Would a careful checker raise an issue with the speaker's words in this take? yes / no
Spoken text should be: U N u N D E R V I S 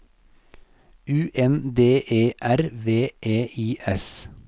yes